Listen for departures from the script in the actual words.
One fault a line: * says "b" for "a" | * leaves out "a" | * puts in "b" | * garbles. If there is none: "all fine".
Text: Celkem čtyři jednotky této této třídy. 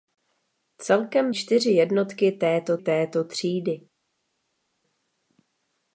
all fine